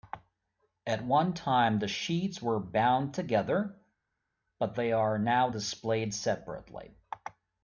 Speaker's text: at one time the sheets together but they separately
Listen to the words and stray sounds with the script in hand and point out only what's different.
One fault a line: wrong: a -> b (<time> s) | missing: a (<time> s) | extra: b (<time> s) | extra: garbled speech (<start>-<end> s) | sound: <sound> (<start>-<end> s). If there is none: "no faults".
extra: were bound (2.4 s)
extra: are now displayed (4.9 s)